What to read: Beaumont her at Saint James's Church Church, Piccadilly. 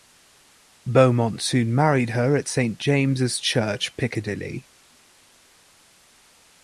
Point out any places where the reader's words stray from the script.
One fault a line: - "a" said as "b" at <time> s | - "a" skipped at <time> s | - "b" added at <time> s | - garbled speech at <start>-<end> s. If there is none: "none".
- "soon married" added at 1.4 s
- "Church" skipped at 4.0 s